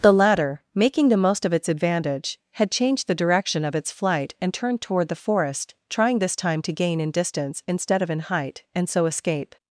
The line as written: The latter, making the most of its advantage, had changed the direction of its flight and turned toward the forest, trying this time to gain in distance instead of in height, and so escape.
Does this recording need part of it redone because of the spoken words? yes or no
no